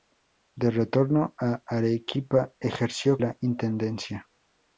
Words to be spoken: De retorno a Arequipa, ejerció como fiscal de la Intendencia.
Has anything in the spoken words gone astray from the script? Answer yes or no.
yes